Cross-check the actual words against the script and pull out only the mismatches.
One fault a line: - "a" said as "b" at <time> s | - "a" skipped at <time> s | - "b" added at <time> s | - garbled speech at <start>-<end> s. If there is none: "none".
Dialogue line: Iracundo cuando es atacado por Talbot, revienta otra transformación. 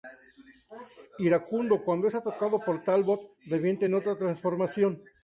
- "en" added at 3.8 s